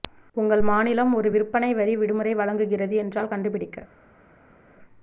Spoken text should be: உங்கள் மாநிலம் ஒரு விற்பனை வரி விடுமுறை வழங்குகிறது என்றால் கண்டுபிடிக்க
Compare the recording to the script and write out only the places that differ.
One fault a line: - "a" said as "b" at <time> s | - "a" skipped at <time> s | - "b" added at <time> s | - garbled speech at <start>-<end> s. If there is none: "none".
none